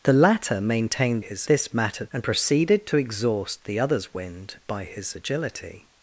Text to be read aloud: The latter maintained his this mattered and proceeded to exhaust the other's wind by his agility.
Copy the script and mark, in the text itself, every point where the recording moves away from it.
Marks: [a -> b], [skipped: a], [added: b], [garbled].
The latter maintained his this mattered and proceeded to exhaust the other's wind by his agility.